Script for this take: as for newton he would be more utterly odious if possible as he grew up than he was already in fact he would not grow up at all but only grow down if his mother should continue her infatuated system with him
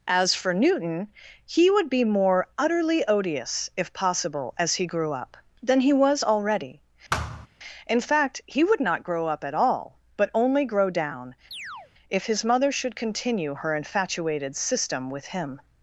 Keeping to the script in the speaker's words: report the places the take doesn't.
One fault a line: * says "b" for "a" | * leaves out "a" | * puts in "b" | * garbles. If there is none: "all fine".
all fine